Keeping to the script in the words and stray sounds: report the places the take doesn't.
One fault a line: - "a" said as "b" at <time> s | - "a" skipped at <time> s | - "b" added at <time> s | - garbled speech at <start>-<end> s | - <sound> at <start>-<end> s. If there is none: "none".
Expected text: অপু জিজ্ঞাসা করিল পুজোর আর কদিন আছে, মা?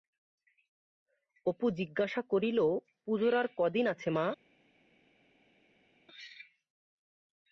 none